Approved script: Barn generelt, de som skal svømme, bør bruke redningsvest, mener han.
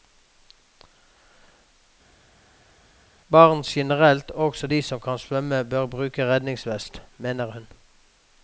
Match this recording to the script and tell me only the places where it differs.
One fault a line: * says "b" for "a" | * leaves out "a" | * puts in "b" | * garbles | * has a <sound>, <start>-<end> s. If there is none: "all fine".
* puts in "også"
* says "kan" for "skal"
* says "hun" for "han"